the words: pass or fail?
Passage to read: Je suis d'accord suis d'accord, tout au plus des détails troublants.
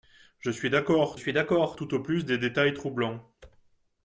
pass